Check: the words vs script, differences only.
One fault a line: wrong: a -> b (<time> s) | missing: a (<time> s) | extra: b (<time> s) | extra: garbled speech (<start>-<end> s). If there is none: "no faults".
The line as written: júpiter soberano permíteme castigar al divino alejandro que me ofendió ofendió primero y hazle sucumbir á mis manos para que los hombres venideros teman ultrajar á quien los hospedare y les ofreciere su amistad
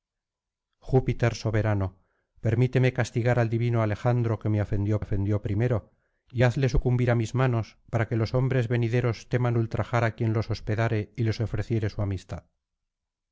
no faults